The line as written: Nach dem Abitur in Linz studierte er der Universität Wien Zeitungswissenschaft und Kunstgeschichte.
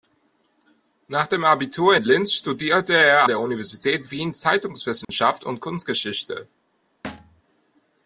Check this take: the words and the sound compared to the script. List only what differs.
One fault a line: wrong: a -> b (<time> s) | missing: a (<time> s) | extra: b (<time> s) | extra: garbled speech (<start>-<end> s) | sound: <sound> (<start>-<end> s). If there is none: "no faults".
sound: dropout (5.0-5.1 s)
sound: thud (7.0-7.4 s)